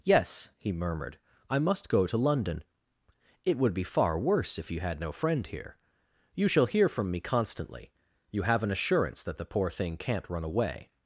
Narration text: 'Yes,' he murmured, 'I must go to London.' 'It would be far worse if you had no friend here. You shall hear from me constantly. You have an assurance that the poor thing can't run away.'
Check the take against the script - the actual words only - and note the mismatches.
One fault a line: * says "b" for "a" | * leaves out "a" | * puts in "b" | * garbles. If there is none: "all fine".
all fine